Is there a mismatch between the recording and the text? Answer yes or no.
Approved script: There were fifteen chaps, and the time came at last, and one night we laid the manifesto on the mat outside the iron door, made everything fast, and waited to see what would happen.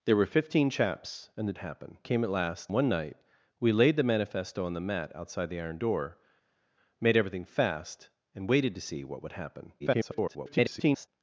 yes